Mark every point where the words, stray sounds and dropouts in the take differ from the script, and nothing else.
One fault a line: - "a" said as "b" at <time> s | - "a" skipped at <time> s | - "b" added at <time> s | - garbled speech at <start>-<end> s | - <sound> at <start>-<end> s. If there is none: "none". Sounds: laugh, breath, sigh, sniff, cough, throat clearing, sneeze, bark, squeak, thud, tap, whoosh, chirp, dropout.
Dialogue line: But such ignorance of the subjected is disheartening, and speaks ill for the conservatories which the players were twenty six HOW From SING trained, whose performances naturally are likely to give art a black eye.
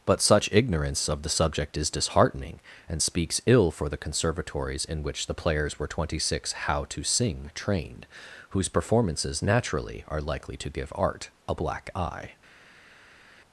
- "subjected" said as "subject" at 1.3 s
- "in" added at 4.9 s
- "From" said as "TO" at 6.9 s